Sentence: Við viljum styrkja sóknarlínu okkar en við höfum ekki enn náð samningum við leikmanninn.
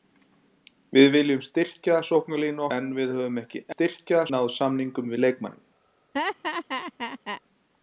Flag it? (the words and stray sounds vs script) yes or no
yes